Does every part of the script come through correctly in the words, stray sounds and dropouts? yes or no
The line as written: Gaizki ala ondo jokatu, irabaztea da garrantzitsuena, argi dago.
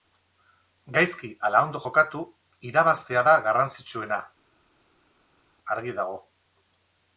yes